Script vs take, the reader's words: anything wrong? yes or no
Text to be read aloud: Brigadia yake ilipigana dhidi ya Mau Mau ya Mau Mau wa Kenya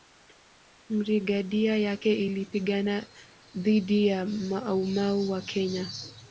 yes